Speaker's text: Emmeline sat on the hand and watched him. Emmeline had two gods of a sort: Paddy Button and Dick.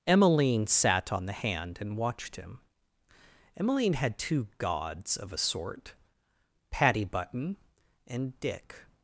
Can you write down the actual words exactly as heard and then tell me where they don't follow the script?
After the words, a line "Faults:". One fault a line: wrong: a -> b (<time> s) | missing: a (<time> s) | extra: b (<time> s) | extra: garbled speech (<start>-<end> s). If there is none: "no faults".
Emmeline sat on the hand and watched him. Emmeline had two gods of a sort: Paddy Button and Dick.
Faults:
no faults